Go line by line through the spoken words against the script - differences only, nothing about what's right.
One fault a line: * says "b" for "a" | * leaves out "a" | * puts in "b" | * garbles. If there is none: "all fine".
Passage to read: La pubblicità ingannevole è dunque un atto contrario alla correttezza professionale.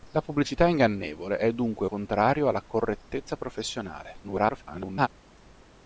* leaves out "un atto"
* garbles